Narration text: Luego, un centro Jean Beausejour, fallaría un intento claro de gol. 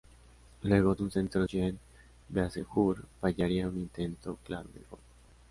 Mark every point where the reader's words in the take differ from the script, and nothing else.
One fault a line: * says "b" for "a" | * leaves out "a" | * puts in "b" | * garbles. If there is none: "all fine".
all fine